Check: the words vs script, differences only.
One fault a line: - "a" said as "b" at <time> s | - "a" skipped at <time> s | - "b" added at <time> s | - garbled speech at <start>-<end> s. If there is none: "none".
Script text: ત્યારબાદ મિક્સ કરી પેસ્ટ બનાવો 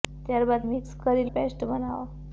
none